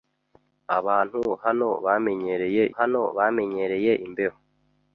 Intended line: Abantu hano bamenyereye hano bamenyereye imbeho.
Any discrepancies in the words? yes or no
no